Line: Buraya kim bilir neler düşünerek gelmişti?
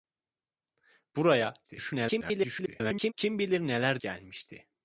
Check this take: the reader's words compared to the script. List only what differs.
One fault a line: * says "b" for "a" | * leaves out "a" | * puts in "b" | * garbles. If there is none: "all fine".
* garbles
* leaves out "düşünerek"